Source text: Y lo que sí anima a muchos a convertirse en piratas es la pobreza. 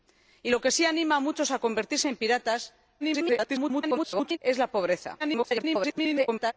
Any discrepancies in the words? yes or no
yes